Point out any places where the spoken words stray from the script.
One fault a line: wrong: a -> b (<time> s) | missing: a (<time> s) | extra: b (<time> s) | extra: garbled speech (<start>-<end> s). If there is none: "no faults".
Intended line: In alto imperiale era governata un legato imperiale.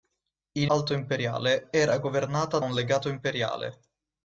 no faults